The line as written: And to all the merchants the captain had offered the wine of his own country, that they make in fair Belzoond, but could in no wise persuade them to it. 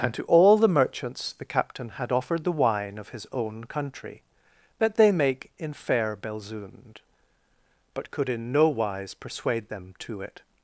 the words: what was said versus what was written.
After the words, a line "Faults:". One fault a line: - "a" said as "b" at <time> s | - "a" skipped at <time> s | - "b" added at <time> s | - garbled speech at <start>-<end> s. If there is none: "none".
And to all the merchants the captain had offered the wine of his own country, that they make in fair Belzoond, but could in no wise persuade them to it.
Faults:
none